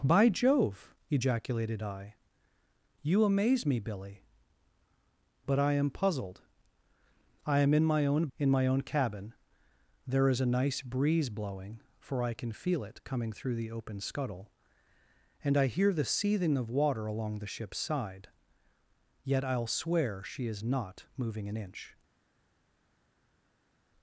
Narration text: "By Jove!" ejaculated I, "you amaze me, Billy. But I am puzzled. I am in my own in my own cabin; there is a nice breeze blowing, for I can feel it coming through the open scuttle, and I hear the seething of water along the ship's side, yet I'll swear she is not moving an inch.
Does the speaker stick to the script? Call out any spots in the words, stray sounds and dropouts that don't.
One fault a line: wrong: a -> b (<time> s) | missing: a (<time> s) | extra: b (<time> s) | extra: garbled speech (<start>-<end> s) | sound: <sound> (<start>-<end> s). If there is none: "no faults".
no faults